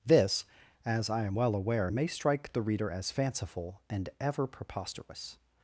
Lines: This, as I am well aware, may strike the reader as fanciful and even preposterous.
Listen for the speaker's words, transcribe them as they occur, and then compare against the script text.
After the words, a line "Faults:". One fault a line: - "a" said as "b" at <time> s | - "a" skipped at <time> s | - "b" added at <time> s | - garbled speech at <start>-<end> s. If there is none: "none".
This, as I am well aware, may strike the reader as fanciful and ever preposterous.
Faults:
- "even" said as "ever" at 4.2 s